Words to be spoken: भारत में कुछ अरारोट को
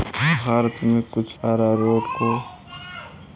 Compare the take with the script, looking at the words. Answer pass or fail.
pass